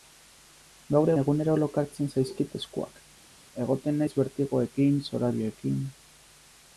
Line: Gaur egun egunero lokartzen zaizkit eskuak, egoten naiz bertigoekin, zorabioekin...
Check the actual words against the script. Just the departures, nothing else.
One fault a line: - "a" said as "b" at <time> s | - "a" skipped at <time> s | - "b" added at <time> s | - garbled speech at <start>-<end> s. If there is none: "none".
- "egun" skipped at 1.1 s